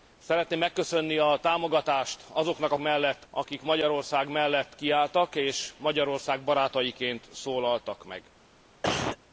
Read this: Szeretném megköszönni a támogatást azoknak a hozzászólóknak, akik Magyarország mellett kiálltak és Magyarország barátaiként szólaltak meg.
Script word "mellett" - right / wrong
right